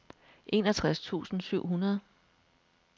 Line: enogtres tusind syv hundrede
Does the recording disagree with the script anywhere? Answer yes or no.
no